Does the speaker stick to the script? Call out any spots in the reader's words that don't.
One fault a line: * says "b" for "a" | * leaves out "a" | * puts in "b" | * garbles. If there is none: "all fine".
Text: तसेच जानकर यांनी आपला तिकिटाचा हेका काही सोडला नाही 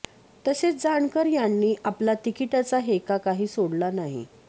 all fine